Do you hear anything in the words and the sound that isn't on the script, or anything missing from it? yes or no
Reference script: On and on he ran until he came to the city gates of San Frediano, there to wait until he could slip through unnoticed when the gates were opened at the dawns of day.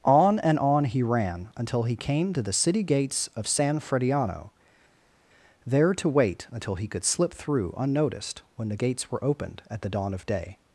yes